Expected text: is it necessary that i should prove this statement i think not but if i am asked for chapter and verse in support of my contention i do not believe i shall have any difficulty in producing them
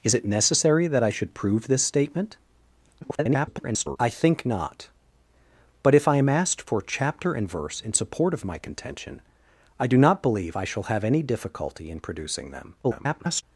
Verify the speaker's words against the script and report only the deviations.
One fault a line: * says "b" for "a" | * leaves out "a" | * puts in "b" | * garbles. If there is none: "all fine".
* garbles
* garbles